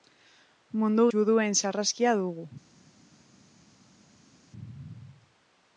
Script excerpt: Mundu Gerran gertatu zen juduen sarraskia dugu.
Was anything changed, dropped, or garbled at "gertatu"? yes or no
yes